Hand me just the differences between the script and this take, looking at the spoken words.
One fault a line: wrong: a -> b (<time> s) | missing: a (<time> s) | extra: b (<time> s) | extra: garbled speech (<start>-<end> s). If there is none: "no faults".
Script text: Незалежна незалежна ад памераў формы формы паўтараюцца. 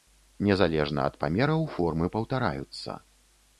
missing: незалежна (1.0 s)
missing: формы (2.1 s)